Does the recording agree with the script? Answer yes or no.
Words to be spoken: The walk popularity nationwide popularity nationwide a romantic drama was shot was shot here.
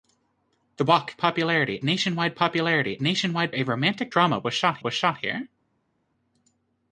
yes